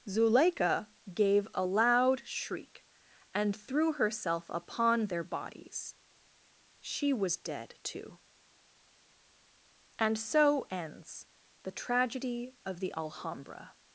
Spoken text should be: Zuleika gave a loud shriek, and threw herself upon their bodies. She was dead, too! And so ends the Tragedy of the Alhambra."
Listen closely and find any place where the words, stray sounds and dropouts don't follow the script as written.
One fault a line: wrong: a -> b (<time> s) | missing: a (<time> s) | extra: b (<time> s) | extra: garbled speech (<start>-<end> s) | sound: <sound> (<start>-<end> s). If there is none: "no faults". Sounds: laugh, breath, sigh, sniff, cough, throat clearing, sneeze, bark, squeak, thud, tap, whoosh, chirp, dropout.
no faults